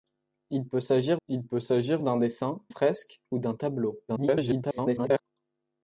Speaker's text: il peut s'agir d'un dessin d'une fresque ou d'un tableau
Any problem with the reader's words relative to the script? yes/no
yes